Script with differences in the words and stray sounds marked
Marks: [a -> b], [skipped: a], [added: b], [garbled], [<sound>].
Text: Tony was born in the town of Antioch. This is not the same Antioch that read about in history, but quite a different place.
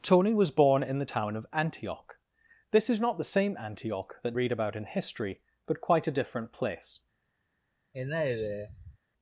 Tony was born in the town of Antioch. This is not the same Antioch that read about in history, but quite a different place. [sigh]